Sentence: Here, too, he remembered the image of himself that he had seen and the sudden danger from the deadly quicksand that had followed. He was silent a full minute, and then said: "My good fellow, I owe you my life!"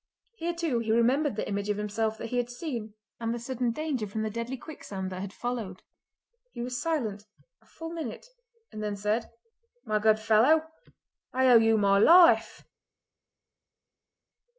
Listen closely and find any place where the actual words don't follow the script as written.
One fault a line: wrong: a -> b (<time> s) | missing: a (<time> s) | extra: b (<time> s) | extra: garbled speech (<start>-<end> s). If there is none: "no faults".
no faults